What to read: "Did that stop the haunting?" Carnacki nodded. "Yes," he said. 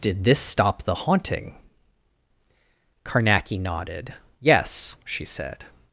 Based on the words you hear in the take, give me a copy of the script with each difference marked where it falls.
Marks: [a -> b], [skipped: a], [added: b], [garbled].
"Did [that -> this] stop the haunting?" Carnacki nodded. "Yes," [he -> she] said.